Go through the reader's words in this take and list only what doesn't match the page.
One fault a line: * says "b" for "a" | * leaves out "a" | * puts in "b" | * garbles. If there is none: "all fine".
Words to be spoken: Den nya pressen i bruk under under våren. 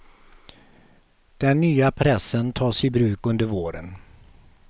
* puts in "tas"
* leaves out "under"